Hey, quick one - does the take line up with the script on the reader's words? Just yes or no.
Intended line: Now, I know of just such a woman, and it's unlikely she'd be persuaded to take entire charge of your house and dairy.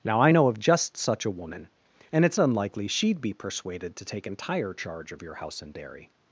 yes